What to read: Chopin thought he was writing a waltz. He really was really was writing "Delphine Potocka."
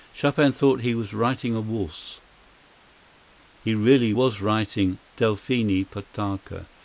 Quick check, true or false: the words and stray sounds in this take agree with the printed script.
false